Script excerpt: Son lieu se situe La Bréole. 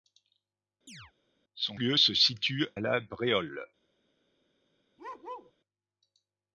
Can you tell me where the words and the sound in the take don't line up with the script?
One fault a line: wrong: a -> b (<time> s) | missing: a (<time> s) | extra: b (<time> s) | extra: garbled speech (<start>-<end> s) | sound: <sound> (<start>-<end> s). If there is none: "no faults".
sound: chirp (0.9-1.1 s)
sound: bark (5.0-5.5 s)